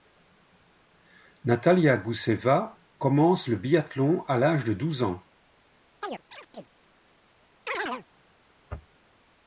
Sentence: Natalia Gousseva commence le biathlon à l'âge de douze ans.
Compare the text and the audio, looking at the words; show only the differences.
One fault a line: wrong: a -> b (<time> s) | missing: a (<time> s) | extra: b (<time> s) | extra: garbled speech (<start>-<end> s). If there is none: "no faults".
no faults